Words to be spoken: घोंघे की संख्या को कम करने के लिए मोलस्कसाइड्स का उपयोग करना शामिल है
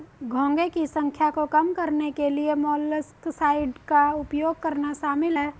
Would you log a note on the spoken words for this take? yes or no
no